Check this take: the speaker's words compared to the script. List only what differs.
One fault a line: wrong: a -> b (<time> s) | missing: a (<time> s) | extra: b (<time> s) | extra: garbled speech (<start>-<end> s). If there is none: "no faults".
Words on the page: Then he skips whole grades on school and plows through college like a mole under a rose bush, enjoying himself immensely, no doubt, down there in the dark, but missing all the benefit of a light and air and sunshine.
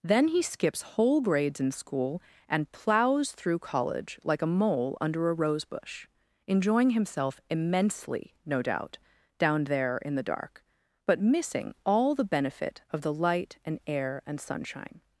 wrong: on -> in (1.6 s)
wrong: a -> the (13.0 s)